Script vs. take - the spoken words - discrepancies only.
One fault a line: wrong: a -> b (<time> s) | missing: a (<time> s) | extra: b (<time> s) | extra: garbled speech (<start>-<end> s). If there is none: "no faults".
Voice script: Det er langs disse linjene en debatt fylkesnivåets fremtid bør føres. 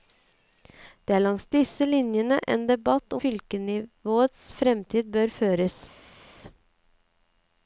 no faults